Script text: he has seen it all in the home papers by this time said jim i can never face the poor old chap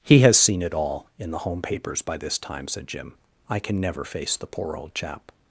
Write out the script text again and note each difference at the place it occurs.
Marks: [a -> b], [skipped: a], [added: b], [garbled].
he has seen it all in the home papers by this time said jim i can never face the poor old chap